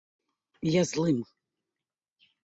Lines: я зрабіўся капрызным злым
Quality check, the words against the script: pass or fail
fail